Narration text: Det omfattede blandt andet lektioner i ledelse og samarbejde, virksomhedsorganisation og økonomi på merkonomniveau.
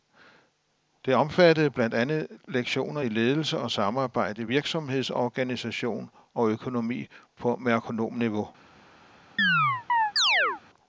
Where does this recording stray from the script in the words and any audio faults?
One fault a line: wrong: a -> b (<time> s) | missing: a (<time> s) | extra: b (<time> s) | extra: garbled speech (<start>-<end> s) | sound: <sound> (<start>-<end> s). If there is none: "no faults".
sound: chirp (9.4-10.6 s)